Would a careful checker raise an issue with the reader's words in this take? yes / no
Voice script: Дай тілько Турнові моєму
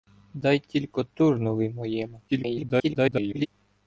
yes